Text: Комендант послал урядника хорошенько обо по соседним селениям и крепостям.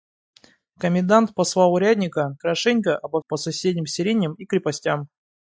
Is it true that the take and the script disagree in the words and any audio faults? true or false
false